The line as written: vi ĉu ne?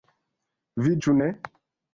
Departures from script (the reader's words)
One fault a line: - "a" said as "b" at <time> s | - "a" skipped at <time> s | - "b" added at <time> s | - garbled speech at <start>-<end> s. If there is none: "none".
none